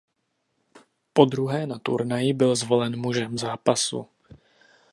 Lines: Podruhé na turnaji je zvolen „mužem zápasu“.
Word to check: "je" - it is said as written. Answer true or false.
false